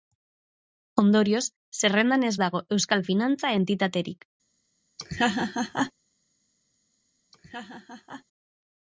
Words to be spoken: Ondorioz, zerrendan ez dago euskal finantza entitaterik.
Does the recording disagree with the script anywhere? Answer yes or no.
no